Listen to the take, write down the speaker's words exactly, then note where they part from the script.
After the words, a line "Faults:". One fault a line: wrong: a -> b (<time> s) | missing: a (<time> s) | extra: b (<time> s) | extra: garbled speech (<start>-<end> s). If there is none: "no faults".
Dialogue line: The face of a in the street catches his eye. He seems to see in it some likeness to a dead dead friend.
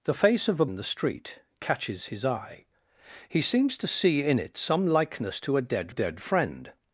The face of a in the street catches his eye. He seems to see in it some likeness to a dead dead friend.
Faults:
no faults